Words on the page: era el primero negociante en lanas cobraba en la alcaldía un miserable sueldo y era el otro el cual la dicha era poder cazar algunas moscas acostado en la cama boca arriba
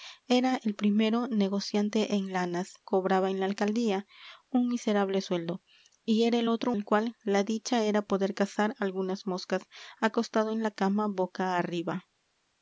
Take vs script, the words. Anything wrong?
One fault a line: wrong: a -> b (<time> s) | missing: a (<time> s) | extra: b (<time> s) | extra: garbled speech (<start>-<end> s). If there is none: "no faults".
no faults